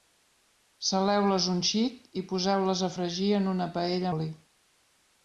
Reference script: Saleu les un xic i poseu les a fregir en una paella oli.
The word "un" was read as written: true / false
true